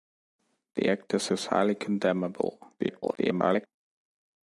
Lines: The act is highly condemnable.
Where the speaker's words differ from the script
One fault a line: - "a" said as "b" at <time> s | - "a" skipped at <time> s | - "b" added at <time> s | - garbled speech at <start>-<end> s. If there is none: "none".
- "is" added at 1.3 s
- garbled speech at 2.8-3.7 s